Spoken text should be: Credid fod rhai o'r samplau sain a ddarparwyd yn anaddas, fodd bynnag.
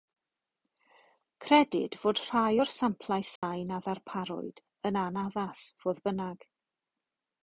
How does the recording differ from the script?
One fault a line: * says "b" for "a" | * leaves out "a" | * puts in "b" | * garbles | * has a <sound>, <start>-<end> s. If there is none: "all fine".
* has a dropout, 3.4-3.4 s